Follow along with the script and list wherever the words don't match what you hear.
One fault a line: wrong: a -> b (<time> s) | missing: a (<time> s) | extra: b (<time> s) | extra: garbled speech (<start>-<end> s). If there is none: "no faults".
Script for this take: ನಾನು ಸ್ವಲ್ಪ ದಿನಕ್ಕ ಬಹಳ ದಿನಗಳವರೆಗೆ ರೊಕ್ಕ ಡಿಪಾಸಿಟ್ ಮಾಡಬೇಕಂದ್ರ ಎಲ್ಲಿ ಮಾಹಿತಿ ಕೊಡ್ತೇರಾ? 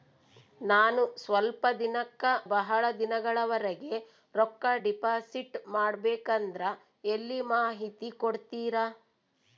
no faults